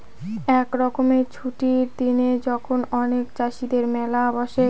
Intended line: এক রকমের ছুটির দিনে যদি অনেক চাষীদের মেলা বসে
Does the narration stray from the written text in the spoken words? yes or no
yes